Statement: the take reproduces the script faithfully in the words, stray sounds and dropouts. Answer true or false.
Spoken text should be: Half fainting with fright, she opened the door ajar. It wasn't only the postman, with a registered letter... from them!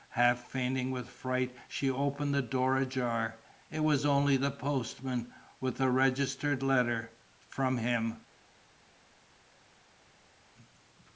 false